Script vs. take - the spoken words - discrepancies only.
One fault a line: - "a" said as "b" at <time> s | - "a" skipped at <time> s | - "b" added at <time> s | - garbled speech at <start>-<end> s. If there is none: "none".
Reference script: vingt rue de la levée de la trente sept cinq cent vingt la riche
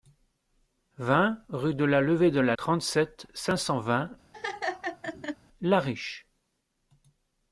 none